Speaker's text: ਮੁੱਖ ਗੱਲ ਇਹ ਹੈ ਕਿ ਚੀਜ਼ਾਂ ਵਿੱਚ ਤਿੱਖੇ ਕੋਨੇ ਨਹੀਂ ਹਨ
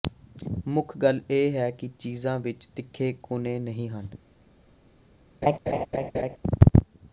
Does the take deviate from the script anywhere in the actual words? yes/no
no